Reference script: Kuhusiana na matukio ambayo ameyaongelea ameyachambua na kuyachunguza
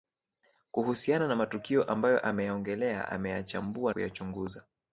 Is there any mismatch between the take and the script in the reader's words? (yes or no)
yes